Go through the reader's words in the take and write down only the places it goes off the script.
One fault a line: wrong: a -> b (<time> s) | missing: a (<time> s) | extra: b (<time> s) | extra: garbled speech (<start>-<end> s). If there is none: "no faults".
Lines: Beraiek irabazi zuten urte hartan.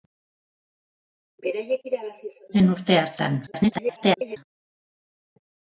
extra: garbled speech (3.5-4.4 s)